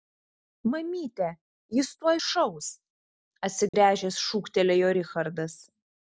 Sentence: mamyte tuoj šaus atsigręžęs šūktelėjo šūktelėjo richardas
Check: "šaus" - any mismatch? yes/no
no